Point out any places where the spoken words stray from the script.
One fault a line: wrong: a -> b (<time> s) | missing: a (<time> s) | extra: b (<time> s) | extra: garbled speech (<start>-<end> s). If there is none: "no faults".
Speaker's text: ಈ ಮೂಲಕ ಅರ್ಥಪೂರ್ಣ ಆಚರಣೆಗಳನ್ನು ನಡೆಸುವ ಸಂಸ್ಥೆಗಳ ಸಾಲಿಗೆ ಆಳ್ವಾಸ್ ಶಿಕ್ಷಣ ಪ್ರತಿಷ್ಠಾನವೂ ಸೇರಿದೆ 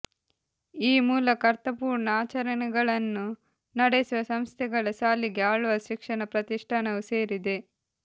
no faults